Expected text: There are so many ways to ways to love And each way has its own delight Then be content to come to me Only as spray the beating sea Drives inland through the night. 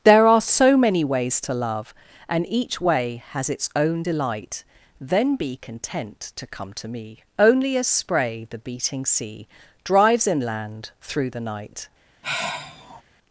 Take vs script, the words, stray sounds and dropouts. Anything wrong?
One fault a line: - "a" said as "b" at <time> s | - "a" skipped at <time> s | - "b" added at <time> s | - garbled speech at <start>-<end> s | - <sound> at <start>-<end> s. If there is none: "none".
- "ways to" skipped at 1.5 s
- sigh at 12.2-13.0 s